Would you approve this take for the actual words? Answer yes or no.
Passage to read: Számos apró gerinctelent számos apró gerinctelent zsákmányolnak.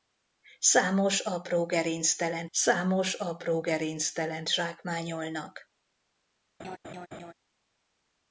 yes